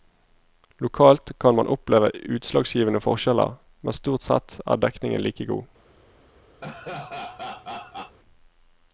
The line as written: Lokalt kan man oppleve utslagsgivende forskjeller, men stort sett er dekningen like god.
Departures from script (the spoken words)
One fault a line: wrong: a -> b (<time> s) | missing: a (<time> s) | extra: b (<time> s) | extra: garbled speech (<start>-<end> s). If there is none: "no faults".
no faults